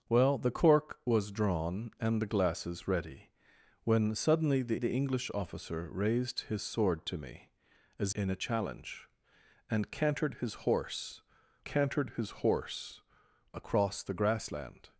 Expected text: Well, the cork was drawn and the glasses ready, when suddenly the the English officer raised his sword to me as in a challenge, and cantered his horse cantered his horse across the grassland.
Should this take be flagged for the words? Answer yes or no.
no